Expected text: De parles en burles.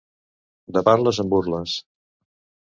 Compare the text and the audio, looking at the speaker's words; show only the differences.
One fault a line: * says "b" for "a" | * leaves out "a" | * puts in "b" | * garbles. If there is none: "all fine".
all fine